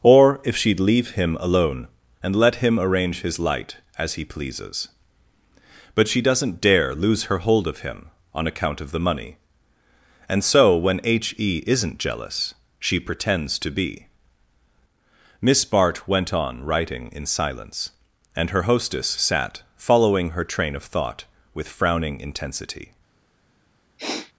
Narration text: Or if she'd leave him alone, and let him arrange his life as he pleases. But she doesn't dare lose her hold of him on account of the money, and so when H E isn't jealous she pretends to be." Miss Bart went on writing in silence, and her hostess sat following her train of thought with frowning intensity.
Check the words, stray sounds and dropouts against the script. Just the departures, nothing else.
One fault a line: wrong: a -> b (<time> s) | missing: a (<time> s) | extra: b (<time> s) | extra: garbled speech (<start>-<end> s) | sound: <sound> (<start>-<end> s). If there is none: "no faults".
wrong: life -> light (3.4 s)
sound: sniff (24.0-24.3 s)